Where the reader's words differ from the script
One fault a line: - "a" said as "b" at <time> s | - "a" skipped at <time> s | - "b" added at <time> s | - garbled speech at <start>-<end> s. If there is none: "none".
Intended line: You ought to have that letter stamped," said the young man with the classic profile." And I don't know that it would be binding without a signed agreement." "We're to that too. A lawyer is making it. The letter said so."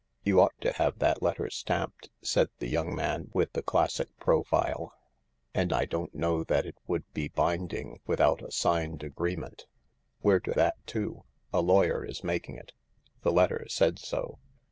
none